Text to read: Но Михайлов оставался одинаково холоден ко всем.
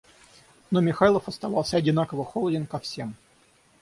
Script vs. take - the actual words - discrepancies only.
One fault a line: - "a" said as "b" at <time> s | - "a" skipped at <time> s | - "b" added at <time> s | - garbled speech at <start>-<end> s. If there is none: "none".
none